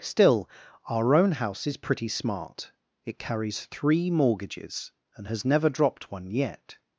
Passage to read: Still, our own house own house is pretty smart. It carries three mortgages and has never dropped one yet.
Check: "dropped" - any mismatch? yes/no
no